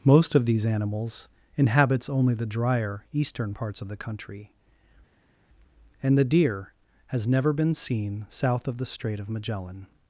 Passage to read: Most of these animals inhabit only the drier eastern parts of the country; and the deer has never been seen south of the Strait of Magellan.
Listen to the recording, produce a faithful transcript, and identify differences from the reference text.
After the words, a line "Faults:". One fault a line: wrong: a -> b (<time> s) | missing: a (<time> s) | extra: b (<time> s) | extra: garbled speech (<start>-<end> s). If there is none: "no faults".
Most of these animals inhabits only the drier eastern parts of the country; and the deer has never been seen south of the Strait of Magellan.
Faults:
wrong: inhabit -> inhabits (1.6 s)